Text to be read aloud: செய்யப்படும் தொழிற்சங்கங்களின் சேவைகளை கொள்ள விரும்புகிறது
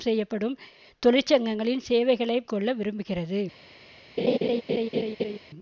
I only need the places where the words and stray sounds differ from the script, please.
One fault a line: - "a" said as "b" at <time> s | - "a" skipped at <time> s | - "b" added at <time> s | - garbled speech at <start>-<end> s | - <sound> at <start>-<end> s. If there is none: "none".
- laugh at 4.2-5.4 s